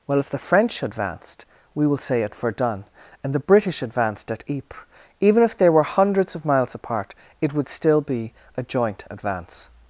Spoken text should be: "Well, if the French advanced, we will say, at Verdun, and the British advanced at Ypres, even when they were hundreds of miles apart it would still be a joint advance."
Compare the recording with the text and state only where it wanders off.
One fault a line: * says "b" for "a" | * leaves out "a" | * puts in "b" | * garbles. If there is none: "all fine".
* says "if" for "when"